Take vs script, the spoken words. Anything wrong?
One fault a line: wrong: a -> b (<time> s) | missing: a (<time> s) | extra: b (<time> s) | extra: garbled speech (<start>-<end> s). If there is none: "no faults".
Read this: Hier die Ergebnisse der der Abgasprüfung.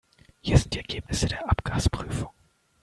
extra: sind (0.6 s)
missing: der (1.5 s)